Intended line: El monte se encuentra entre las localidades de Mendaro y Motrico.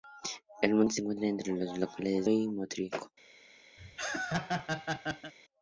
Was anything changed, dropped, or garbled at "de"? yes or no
yes